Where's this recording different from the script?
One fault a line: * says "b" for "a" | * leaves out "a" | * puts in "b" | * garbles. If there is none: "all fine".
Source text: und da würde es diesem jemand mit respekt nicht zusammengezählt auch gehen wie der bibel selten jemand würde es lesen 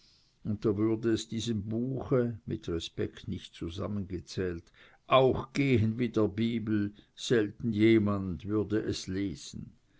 * says "buche" for "jemand"